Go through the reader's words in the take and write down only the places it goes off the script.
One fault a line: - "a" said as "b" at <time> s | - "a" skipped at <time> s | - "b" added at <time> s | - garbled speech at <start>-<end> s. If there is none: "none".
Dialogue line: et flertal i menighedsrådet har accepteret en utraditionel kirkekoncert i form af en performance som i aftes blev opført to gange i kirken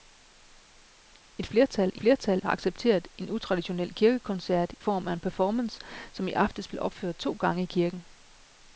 - "menighedsrådet" said as "flertal" at 1.9 s
- "i" skipped at 4.7 s